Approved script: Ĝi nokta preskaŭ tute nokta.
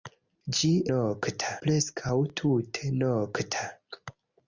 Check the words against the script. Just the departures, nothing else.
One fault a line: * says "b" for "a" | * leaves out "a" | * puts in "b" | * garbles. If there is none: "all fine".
all fine